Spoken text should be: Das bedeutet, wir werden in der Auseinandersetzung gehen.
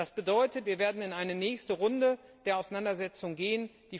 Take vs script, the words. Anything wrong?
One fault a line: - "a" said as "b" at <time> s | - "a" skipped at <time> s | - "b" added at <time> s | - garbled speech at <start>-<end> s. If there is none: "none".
- "eine nächste Runde" added at 1.1 s